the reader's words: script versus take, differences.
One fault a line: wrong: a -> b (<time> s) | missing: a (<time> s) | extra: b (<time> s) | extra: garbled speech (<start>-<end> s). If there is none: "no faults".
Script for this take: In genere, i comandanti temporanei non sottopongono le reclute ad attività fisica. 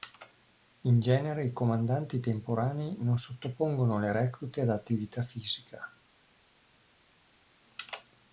no faults